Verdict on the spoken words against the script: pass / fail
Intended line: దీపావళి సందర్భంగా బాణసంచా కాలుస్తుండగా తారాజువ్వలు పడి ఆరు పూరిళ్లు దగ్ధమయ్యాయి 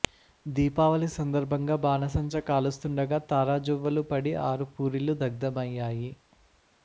pass